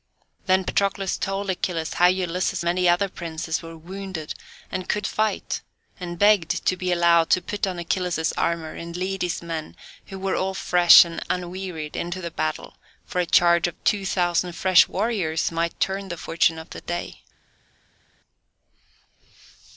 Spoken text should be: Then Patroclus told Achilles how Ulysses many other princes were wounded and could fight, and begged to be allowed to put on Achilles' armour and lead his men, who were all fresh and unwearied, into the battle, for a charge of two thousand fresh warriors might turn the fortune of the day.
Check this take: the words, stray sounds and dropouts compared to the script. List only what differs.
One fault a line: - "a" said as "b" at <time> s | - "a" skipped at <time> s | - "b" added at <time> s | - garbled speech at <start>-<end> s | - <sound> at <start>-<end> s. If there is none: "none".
none